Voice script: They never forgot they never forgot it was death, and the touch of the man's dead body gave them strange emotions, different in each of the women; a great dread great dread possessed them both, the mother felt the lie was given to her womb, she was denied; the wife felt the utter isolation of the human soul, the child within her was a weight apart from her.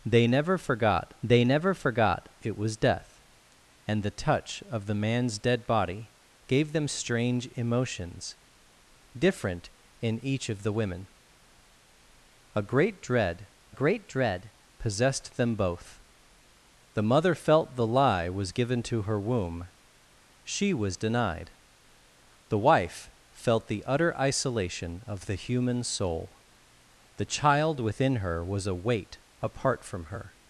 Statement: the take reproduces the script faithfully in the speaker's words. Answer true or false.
true